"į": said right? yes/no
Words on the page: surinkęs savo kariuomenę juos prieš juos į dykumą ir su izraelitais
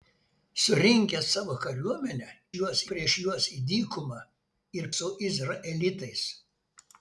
yes